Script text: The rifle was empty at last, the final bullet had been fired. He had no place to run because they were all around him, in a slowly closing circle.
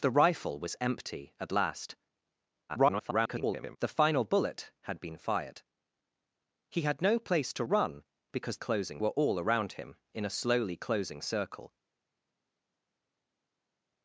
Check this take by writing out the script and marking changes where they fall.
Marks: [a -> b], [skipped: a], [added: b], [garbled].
The rifle was empty at last, [garbled] the final bullet had been fired. He had no place to run because [they -> closing] were all around him, in a slowly closing circle.